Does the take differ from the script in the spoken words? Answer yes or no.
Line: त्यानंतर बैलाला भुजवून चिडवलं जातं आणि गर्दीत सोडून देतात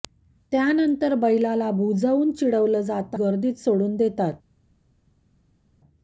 yes